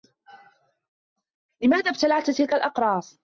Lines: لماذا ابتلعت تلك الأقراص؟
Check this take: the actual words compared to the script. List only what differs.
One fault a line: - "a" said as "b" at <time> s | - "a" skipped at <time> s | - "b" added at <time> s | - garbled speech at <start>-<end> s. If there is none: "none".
none